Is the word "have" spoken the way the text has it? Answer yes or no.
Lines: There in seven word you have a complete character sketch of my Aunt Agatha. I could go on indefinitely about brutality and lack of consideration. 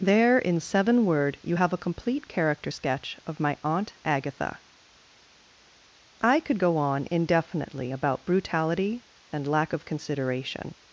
yes